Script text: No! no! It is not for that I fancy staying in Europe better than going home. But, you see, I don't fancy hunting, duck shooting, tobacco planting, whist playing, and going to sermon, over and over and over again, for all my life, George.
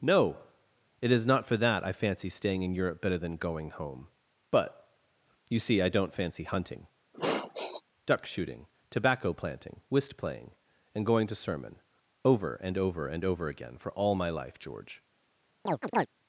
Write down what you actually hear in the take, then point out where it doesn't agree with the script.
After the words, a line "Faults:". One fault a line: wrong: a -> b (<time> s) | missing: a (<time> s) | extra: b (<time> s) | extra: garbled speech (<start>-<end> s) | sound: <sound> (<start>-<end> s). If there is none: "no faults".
No! It is not for that I fancy staying in Europe better than going home. But, you see, I don't fancy hunting, duck shooting, tobacco planting, whist playing, and going to sermon, over and over and over again, for all my life, George.
Faults:
missing: no (0.4 s)
sound: sniff (7.1-7.8 s)
sound: chirp (15.7-16.1 s)